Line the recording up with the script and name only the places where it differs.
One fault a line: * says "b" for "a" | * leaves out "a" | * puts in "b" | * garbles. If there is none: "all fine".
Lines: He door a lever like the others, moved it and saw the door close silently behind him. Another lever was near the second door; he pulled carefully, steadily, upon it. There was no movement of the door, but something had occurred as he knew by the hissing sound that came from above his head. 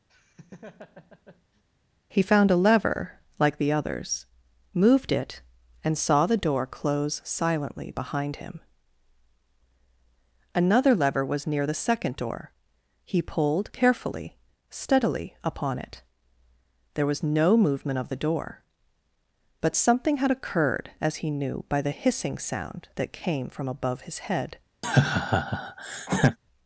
* says "found" for "door"